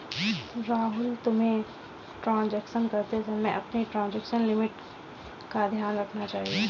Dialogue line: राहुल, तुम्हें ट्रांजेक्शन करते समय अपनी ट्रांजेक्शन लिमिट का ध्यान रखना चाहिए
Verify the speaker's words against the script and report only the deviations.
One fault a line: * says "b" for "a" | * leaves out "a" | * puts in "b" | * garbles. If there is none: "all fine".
all fine